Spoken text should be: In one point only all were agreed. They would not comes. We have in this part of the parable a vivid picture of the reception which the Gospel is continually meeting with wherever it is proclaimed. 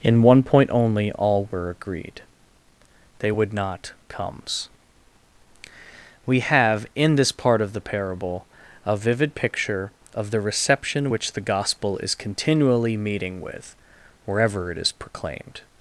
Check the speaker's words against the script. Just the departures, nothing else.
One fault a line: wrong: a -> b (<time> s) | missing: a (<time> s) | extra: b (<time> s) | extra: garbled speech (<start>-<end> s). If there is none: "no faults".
no faults